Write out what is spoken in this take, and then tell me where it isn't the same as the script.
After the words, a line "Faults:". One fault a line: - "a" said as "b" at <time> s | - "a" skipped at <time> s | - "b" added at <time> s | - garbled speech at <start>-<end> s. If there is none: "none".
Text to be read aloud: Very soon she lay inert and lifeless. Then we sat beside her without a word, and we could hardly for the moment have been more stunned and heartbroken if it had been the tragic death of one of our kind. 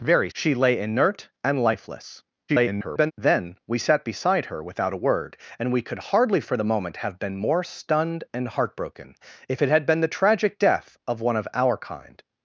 Very she lay inert and lifeless. [garbled] Then we sat beside her without a word, and we could hardly for the moment have been more stunned and heartbroken if it had been the tragic death of one of our kind.
Faults:
- "soon" skipped at 0.3 s
- garbled speech at 2.5-3.1 s